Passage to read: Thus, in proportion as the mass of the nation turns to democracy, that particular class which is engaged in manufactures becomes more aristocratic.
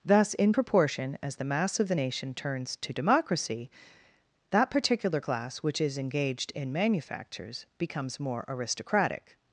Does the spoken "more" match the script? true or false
true